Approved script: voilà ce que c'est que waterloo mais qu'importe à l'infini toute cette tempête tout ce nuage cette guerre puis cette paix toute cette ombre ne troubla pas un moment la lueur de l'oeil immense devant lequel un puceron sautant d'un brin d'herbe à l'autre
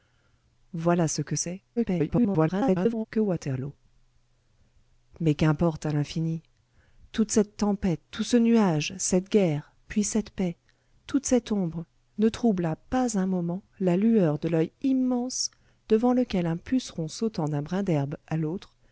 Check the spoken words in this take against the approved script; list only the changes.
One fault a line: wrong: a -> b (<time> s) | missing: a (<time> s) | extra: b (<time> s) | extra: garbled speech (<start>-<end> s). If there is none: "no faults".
extra: garbled speech (1.8-3.1 s)